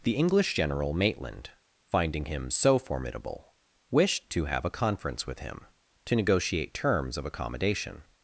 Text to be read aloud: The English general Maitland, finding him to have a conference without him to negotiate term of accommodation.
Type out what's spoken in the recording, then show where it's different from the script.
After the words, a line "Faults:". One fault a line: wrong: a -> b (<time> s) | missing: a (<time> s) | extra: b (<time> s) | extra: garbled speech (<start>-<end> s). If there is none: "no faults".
The English general Maitland, finding him so formidable, wished to have a conference with him to negotiate terms of accommodation.
Faults:
extra: so formidable wished (2.5 s)
wrong: without -> with (5.3 s)
wrong: term -> terms (6.7 s)